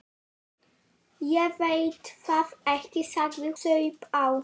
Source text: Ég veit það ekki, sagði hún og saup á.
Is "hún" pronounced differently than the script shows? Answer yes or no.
yes